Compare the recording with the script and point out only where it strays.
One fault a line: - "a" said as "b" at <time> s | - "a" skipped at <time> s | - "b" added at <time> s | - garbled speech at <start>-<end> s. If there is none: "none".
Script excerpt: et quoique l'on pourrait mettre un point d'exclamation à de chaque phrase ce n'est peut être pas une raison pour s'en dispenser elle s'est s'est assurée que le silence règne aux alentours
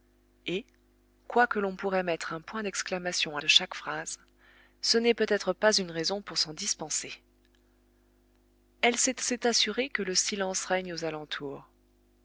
none